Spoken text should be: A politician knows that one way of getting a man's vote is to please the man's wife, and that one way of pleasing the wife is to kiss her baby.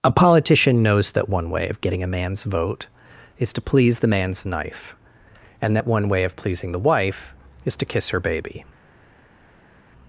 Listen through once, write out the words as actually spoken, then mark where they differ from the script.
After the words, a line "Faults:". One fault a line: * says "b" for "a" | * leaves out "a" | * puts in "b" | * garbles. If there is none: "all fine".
A politician knows that one way of getting a man's vote is to please the man's knife, and that one way of pleasing the wife is to kiss her baby.
Faults:
* says "knife" for "wife"